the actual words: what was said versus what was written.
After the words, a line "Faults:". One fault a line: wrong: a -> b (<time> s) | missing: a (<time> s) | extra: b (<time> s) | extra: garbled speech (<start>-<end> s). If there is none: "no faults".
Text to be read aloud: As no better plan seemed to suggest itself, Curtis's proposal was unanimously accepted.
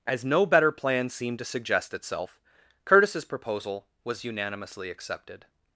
As no better plan seemed to suggest itself, Curtis's proposal was unanimously accepted.
Faults:
no faults